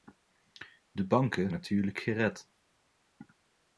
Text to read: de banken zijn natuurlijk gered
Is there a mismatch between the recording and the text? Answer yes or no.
yes